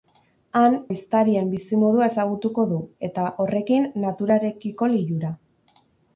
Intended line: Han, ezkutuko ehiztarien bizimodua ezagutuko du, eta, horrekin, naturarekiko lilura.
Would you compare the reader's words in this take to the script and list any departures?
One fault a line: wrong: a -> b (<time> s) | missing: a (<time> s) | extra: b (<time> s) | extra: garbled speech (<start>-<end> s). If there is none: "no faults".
missing: ezkutuko (0.8 s)